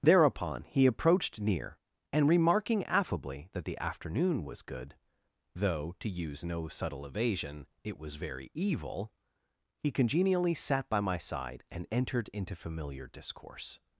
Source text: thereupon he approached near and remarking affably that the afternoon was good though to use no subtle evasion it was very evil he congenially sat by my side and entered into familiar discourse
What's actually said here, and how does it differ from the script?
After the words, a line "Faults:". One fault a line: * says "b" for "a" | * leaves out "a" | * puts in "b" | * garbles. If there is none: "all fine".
thereupon he approached near and remarking affably that the afternoon was good though to use no subtle evasion it was very evil he congenially sat by my side and entered into familiar discourse
Faults:
all fine